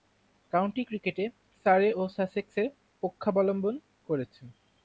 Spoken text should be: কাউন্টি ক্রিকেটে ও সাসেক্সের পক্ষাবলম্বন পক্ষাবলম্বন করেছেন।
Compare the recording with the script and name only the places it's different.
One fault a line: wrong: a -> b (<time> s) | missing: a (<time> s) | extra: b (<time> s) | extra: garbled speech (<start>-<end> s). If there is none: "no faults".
extra: সারে (1.6 s)
missing: পক্ষাবলম্বন (3.7 s)